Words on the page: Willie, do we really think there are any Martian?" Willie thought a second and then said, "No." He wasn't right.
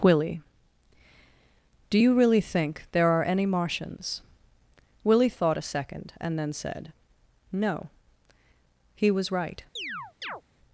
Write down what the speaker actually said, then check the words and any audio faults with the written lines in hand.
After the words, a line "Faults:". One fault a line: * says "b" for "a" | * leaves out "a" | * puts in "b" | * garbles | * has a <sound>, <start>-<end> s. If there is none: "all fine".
Willie, do you really think there are any Martians?" Willie thought a second and then said, "No." He was right.
Faults:
* says "you" for "we"
* says "Martians" for "Martian"
* says "was" for "wasn't"
* has a chirp, 9.8-10.4 s